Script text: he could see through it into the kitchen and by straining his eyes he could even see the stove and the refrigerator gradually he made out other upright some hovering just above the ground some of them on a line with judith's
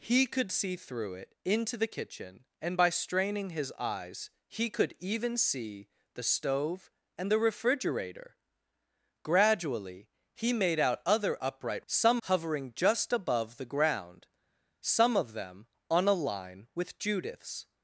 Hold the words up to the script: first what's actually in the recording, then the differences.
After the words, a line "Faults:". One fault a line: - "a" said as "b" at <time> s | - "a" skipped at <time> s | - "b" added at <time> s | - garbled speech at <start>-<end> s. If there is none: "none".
he could see through it into the kitchen and by straining his eyes he could even see the stove and the refrigerator gradually he made out other upright some hovering just above the ground some of them on a line with judith's
Faults:
none